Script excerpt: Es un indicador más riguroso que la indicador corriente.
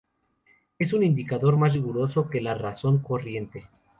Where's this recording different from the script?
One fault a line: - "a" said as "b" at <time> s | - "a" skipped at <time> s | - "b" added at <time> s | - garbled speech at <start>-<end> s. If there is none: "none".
- "indicador" said as "razón" at 2.5 s